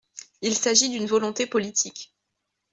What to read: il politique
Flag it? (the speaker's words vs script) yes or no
yes